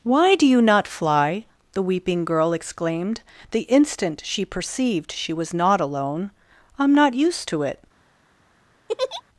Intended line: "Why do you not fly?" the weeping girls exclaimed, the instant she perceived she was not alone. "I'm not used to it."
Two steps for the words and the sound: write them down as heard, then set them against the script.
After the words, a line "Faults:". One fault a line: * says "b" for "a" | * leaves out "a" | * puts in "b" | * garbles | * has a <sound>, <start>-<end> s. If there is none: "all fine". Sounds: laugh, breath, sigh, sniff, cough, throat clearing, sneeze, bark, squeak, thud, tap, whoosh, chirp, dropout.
"Why do you not fly?" the weeping girl exclaimed, the instant she perceived she was not alone. "I'm not used to it."
Faults:
* says "girl" for "girls"
* has a laugh, 8.9-9.2 s